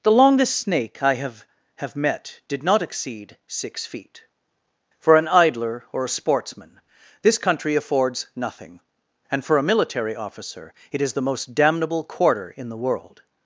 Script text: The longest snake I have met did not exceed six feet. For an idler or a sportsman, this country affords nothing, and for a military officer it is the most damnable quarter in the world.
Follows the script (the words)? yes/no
no